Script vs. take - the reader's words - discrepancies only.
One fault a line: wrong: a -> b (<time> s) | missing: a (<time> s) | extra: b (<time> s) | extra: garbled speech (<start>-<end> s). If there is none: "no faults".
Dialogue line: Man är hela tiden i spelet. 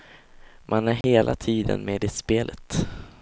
extra: med (1.9 s)